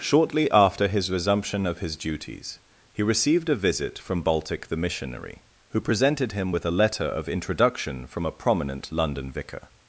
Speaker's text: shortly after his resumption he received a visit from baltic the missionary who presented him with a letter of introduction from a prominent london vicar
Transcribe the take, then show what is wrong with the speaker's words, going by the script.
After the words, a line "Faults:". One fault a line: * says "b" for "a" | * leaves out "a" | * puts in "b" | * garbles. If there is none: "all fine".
shortly after his resumption of his duties he received a visit from baltic the missionary who presented him with a letter of introduction from a prominent london vicar
Faults:
* puts in "of his duties"